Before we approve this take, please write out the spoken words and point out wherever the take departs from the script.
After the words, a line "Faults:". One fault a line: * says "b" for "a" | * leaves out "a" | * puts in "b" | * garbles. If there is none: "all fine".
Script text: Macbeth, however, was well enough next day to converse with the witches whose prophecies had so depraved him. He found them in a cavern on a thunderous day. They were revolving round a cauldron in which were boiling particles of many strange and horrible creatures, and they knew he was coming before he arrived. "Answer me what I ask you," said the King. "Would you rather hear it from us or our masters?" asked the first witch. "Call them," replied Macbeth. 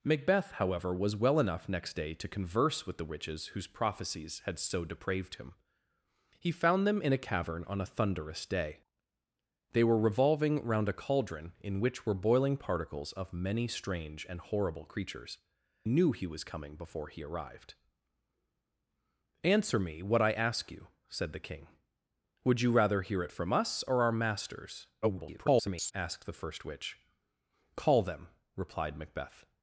Macbeth, however, was well enough next day to converse with the witches whose prophecies had so depraved him. He found them in a cavern on a thunderous day. They were revolving round a cauldron in which were boiling particles of many strange and horrible creatures, knew he was coming before he arrived. "Answer me what I ask you," said the King. "Would you rather hear it from us or our masters?" [garbled] asked the first witch. "Call them," replied Macbeth.
Faults:
* leaves out "and they"
* garbles